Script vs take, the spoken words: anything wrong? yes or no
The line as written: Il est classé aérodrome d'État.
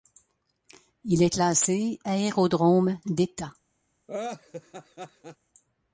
no